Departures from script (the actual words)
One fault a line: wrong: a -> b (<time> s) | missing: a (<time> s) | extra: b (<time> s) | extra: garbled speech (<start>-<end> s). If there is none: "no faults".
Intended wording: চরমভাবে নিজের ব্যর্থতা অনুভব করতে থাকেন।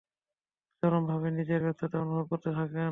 no faults